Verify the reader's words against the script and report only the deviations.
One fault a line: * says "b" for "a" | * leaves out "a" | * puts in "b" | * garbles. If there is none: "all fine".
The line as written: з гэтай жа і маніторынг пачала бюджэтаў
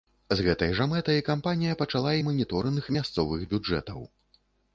* puts in "мэтай кампанія пачала"
* says "мясцовых" for "пачала"